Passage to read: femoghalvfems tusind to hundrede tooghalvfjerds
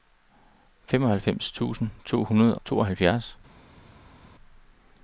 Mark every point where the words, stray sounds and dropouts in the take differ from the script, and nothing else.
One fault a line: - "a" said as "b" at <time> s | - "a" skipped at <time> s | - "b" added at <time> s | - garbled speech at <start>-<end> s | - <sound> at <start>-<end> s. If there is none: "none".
none